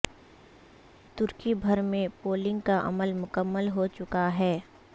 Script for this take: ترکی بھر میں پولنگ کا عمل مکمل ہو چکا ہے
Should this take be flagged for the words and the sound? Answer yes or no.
no